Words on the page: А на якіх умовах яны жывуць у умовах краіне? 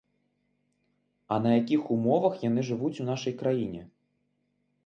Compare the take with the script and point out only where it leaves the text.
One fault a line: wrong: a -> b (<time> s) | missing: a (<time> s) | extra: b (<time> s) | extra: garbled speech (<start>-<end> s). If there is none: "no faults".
wrong: умовах -> нашай (3.1 s)